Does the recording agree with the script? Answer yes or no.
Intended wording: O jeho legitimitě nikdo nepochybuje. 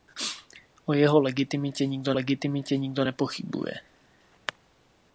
no